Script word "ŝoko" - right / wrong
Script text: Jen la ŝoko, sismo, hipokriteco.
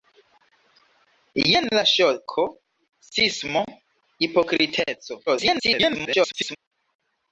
right